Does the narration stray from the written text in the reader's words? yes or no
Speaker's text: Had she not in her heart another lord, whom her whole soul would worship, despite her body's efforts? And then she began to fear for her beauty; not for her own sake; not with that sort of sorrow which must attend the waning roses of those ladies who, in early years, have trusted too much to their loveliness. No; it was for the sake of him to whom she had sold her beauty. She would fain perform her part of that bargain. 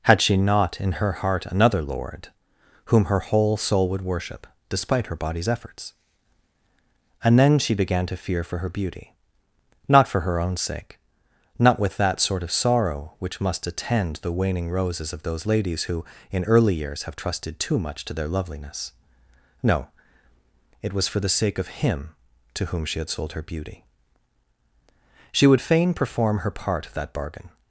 no